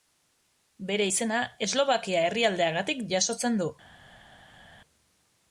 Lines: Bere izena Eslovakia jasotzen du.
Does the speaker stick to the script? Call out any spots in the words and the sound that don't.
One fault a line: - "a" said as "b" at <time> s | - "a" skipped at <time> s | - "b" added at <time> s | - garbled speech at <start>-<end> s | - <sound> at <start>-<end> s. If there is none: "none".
- "herrialdeagatik" added at 2.3 s